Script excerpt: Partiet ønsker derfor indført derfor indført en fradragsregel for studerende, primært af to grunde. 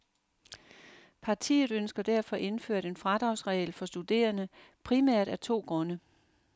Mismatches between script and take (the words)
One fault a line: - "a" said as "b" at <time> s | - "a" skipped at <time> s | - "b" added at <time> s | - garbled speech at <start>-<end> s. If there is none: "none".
- "derfor indført" skipped at 2.9 s